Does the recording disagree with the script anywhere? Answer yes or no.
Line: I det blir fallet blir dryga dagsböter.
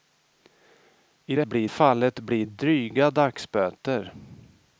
no